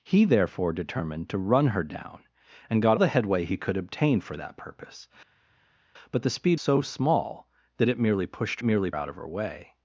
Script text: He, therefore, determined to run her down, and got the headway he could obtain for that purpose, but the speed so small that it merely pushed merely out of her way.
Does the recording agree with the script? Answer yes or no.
yes